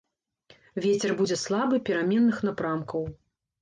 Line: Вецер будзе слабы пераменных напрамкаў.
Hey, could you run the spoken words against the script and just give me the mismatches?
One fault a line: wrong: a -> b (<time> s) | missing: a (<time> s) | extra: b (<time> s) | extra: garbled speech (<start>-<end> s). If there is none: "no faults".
no faults